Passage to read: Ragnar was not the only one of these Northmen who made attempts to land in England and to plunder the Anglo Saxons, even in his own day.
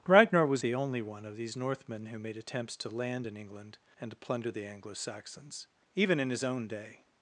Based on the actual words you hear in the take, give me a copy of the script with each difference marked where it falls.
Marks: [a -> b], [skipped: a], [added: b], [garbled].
Ragnar was [skipped: not] the only one of these Northmen who made attempts to land in England and to plunder the Anglo Saxons, even in his own day.